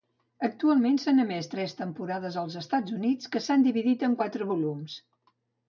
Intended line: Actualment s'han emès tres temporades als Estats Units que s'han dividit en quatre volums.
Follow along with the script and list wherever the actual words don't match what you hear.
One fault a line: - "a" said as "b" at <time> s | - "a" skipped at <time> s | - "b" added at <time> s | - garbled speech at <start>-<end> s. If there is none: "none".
none